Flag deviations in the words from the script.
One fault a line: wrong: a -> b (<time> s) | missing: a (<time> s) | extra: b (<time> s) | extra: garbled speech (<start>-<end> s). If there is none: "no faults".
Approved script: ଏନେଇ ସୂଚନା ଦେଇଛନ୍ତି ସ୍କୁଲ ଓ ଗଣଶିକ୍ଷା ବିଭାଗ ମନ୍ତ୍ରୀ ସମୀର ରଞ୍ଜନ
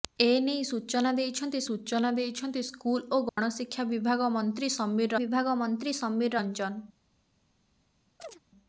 extra: ସୂଚନା ଦେଇଛନ୍ତି (1.7 s)
extra: ବିଭାଗ ମନ୍ତ୍ରୀ ସମୀର (5.2 s)